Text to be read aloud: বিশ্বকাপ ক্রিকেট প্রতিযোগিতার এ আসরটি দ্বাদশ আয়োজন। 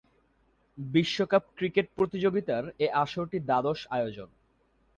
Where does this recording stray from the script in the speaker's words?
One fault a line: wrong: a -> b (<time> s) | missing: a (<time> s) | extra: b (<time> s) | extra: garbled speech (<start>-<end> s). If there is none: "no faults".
no faults